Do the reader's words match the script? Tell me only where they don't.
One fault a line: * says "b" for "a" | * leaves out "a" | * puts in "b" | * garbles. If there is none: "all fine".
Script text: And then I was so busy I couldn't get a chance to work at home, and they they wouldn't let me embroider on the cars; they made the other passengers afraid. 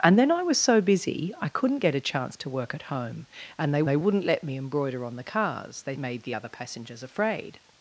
all fine